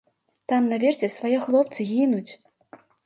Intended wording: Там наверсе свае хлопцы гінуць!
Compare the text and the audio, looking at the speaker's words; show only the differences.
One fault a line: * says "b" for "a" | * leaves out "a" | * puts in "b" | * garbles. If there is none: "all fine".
all fine